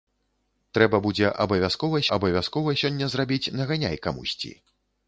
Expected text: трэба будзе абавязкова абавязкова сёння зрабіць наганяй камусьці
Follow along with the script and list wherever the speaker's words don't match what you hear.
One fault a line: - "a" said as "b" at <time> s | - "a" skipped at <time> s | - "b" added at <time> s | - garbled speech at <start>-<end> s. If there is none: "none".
none